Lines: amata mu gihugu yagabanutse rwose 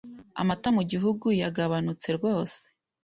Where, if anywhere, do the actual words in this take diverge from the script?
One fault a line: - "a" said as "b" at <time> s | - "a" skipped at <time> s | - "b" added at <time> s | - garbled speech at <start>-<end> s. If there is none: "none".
none